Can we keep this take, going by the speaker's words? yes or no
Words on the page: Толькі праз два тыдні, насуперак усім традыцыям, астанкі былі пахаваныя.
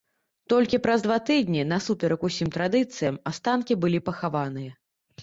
yes